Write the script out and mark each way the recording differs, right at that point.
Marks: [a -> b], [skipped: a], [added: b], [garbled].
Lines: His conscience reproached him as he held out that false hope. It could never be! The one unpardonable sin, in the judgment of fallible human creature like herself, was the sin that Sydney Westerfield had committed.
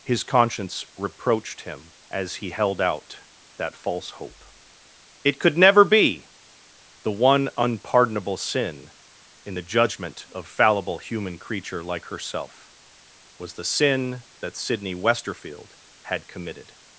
His conscience reproached him as he held out that false hope. It could never be! The one unpardonable sin, in the judgment of fallible human creature like herself, was the sin that Sydney Westerfield had committed.